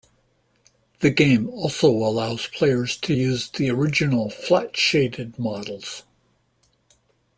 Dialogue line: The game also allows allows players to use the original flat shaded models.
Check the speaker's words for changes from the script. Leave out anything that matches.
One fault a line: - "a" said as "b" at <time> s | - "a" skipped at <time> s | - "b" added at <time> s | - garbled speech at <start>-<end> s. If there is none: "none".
- "allows" skipped at 2.5 s